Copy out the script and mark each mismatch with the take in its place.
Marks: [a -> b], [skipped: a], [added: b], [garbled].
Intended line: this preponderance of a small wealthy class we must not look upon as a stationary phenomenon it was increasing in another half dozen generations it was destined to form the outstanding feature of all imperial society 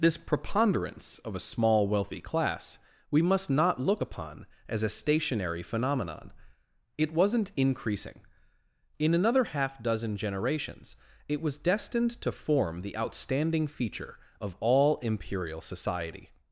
this preponderance of a small wealthy class we must not look upon as a stationary phenomenon it [was -> wasn't] increasing in another half dozen generations it was destined to form the outstanding feature of all imperial society